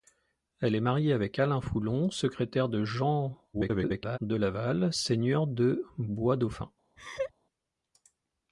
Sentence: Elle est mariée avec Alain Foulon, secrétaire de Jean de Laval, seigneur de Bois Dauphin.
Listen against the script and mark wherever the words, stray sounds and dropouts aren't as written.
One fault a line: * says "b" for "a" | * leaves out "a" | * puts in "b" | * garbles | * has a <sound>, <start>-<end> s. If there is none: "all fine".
* garbles
* has a laugh, 7.0-7.3 s